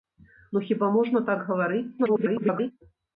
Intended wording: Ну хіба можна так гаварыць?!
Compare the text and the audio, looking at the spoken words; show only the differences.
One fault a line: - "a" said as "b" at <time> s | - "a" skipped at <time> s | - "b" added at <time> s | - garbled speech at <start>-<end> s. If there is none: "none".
- garbled speech at 2.0-2.7 s